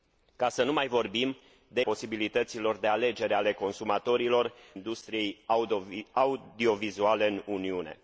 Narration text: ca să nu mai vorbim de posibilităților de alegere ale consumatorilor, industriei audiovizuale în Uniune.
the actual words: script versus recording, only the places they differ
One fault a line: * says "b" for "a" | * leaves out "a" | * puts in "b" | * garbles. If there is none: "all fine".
all fine